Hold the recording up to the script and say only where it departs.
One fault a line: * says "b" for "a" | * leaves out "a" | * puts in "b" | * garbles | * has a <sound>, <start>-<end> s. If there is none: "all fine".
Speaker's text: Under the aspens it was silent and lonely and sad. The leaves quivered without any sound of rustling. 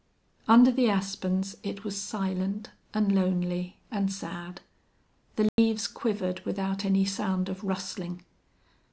* has a dropout, 5.5-5.6 s